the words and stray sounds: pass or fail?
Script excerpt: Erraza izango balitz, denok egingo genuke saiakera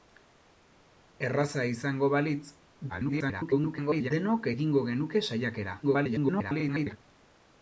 fail